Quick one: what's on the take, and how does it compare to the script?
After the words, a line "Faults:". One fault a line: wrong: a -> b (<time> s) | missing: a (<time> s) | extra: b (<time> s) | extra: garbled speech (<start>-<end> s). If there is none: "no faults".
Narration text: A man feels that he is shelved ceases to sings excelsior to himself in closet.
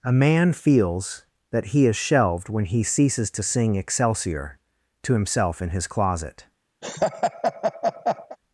A man feels that he is shelved when he ceases to sing excelsior to himself in his closet.
Faults:
extra: when he (2.5 s)
wrong: sings -> sing (3.4 s)
extra: his (5.7 s)